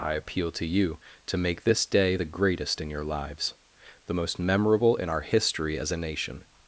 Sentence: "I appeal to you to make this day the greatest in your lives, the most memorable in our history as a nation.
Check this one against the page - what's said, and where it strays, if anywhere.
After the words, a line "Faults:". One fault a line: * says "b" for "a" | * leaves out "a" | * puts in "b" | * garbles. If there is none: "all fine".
"I appeal to you to make this day the greatest in your lives, the most memorable in our history as a nation.
Faults:
all fine